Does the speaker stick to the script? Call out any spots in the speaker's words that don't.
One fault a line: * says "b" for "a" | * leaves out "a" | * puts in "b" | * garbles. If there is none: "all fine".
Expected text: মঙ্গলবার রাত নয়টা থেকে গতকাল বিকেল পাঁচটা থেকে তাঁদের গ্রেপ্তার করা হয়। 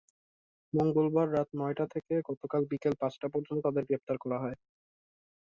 * says "পর্যন্ত" for "থেকে"